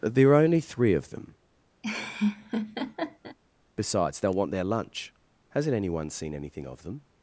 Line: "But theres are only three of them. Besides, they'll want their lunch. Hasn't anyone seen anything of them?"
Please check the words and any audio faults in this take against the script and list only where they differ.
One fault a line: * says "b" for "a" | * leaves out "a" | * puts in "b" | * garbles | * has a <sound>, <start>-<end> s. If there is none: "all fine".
* says "there" for "theres"
* has a laugh, 1.8-3.4 s